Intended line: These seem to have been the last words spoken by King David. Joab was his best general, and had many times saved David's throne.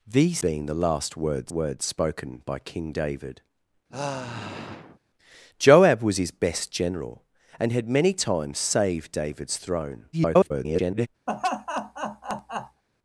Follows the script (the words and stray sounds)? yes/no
no